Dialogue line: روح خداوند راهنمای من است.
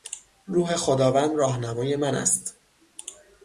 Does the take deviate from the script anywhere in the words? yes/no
no